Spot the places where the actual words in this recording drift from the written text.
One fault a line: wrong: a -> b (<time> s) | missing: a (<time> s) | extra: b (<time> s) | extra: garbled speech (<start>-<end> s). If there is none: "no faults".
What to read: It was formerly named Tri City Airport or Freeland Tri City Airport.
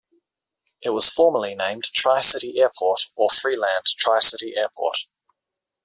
no faults